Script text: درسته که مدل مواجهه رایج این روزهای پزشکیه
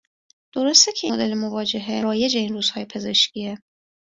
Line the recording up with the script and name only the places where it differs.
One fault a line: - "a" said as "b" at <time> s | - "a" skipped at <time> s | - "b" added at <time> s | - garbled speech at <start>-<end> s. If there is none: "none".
none